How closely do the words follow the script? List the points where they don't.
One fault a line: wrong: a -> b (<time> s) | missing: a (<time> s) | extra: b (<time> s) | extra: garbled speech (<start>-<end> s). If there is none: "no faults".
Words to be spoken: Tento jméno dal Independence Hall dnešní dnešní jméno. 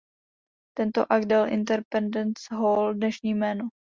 wrong: jméno -> akt (1.1 s)
missing: dnešní (3.3 s)